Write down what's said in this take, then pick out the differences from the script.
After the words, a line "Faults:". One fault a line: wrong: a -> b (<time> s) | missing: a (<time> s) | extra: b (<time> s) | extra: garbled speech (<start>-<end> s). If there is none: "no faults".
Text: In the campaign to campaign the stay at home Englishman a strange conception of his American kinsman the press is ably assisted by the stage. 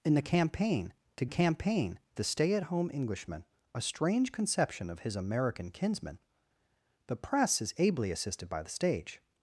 In the campaign to campaign the stay at home Englishman a strange conception of his American kinsman the press is ably assisted by the stage.
Faults:
no faults